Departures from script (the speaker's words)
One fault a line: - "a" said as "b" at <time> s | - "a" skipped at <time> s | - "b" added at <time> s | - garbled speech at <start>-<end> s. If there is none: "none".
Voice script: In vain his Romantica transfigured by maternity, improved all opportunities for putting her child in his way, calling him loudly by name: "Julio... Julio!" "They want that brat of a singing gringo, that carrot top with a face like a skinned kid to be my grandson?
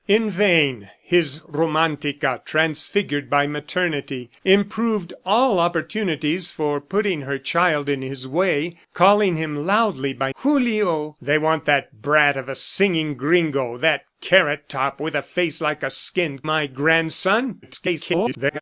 - "name" skipped at 10.3 s
- "Julio" skipped at 11.2 s
- "kid to be" skipped at 16.5 s
- garbled speech at 17.6-18.6 s